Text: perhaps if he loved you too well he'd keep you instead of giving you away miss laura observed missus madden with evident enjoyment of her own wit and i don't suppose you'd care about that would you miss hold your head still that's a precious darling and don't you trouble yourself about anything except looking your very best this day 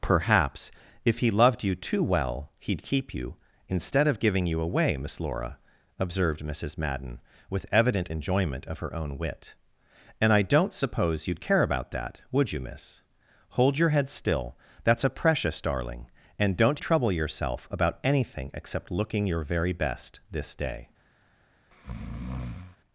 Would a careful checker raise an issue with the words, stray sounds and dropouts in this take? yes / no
yes